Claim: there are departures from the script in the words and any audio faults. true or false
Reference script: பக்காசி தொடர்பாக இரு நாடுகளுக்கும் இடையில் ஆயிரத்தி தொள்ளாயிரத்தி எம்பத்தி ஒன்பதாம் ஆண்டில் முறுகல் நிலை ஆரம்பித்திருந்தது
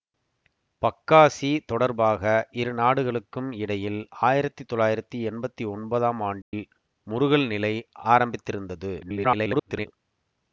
true